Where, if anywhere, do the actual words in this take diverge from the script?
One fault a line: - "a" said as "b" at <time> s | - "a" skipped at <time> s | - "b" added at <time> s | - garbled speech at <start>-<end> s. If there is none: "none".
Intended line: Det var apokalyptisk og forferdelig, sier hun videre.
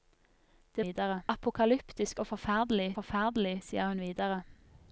- "var" said as "videre" at 0.8 s
- "forferdelig" added at 3.0 s